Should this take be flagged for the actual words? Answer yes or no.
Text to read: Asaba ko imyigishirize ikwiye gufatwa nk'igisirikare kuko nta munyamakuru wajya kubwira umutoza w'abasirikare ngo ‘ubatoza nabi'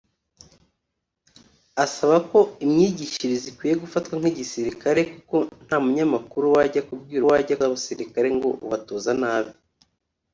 yes